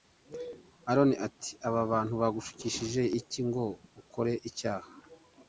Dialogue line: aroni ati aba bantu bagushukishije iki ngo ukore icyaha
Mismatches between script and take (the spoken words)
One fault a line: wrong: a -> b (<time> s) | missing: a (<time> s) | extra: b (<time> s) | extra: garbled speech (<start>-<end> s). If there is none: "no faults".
no faults